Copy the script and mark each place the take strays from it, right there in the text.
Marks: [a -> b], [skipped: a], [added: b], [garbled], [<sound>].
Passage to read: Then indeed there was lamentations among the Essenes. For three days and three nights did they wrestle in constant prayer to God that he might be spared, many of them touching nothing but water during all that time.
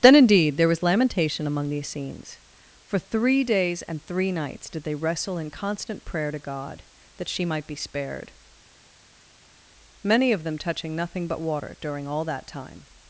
Then indeed there was [lamentations -> lamentation] among the Essenes. For three days and three nights did they wrestle in constant prayer to God that [he -> she] might be spared, many of them touching nothing but water during all that time.